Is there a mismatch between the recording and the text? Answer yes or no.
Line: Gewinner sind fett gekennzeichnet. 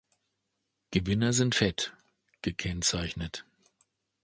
no